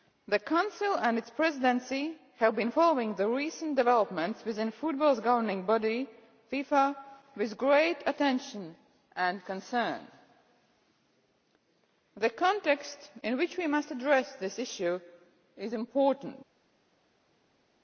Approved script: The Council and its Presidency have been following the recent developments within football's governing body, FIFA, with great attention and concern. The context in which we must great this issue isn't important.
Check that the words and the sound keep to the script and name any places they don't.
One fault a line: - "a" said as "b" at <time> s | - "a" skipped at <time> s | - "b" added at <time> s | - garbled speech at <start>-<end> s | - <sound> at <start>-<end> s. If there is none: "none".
- "great" said as "address" at 13.9 s
- "isn't" said as "is" at 15.6 s